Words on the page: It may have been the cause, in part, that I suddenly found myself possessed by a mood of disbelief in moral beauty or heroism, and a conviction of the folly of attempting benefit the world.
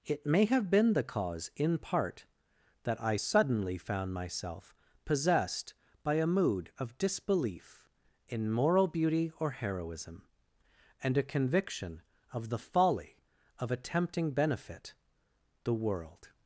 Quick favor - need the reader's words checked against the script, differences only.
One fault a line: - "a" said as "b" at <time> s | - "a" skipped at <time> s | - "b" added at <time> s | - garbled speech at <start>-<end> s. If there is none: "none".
none